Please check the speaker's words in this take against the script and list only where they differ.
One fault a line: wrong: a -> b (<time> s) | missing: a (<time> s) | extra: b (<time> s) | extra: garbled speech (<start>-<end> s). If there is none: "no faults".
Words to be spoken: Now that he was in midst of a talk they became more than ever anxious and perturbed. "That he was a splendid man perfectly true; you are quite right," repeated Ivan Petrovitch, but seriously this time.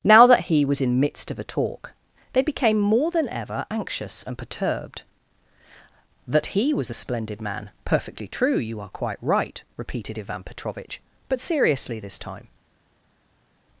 no faults